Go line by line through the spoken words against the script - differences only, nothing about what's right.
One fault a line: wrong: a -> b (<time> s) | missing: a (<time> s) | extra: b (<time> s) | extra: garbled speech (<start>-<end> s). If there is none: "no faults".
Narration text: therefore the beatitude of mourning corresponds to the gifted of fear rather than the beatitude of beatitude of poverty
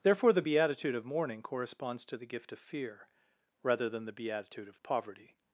wrong: gifted -> gift (2.3 s)
missing: beatitude of (4.8 s)